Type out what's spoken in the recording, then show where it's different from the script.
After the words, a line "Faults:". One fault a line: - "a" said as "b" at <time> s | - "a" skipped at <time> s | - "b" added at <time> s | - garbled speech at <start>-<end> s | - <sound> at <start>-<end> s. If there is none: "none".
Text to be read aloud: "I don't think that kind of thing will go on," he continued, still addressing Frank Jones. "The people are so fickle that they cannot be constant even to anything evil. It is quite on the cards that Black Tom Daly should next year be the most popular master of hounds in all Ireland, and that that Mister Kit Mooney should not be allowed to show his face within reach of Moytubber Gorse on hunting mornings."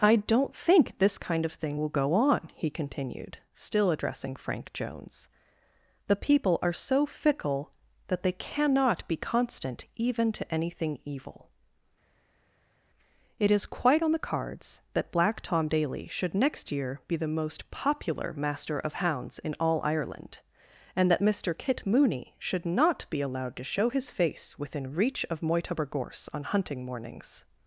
"I don't think this kind of thing will go on," he continued, still addressing Frank Jones. "The people are so fickle that they cannot be constant even to anything evil. It is quite on the cards that Black Tom Daly should next year be the most popular master of hounds in all Ireland, and that Mister Kit Mooney should not be allowed to show his face within reach of Moytubber Gorse on hunting mornings."
Faults:
- "that" said as "this" at 1.0 s
- "that" skipped at 21.2 s